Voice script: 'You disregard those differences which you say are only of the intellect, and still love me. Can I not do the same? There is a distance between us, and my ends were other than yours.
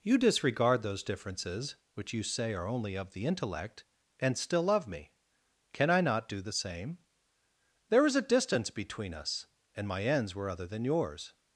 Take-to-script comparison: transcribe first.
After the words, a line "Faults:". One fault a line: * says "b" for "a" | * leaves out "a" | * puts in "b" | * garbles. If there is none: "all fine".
'You disregard those differences which you say are only of the intellect, and still love me. Can I not do the same? There is a distance between us, and my ends were other than yours.
Faults:
all fine